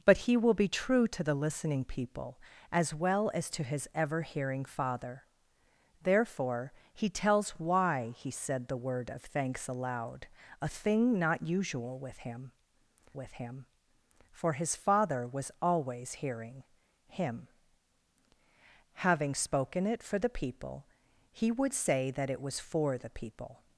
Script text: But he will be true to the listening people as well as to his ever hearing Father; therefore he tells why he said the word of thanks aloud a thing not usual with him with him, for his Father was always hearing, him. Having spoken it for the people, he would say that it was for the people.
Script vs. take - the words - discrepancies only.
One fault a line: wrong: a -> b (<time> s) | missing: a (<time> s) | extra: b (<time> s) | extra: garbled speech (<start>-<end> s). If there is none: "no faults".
no faults